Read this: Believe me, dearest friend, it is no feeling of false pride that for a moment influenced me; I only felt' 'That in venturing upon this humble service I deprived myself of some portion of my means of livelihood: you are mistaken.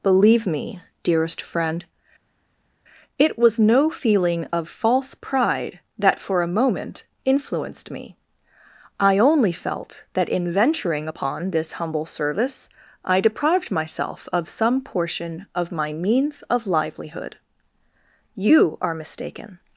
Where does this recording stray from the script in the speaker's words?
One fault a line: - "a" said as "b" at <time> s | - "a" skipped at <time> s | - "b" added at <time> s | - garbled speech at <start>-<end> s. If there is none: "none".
- "is" said as "was" at 3.4 s